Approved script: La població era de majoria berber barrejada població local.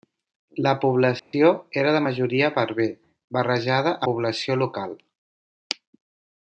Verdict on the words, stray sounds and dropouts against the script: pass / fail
fail